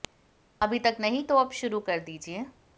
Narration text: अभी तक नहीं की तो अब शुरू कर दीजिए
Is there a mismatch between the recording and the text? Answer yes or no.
yes